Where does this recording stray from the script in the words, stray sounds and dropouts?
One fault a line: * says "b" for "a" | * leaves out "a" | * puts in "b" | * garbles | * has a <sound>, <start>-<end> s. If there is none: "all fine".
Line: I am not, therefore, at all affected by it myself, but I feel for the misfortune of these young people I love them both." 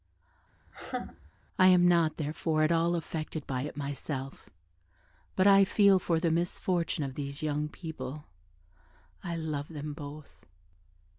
* has a laugh, 0.7-1.3 s